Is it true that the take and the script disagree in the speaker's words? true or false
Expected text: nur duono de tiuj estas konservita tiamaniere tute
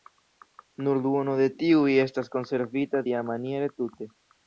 false